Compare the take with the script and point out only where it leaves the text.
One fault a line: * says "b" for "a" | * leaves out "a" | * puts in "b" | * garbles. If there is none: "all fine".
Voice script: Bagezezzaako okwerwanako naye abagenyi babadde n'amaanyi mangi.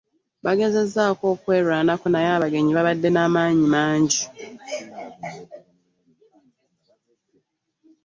all fine